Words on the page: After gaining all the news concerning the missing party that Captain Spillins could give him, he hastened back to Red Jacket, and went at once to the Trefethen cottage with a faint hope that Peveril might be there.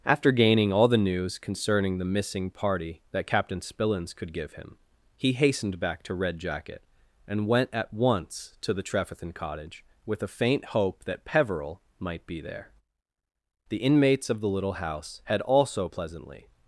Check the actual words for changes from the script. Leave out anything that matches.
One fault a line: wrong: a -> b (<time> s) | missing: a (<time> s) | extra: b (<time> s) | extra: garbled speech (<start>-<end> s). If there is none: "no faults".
extra: The inmates of the little house had also pleasantly (13.7 s)